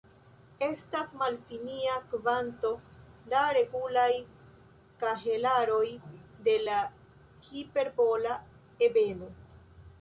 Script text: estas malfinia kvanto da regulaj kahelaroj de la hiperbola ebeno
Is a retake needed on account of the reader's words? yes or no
no